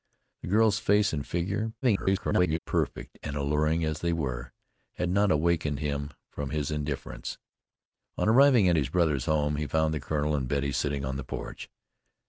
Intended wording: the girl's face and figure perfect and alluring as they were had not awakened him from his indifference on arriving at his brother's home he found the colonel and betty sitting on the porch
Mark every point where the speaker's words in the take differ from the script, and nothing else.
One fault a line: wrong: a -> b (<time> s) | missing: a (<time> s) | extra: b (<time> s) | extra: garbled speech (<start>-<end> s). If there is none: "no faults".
extra: garbled speech (1.8-2.6 s)